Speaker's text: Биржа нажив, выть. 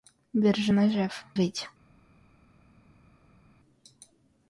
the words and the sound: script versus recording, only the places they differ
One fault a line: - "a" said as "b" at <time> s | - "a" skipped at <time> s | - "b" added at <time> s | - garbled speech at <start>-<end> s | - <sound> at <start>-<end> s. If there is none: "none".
none